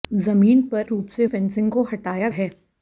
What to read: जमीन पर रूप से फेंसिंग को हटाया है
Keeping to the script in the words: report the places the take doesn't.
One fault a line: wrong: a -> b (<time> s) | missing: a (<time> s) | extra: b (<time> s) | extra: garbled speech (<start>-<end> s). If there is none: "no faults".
no faults